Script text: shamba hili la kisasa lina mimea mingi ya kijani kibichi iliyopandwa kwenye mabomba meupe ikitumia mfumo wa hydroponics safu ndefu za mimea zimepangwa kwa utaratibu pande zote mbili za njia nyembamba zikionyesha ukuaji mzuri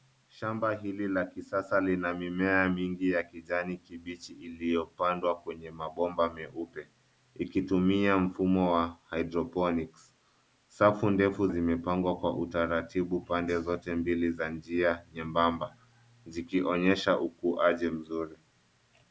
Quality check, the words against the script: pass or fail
fail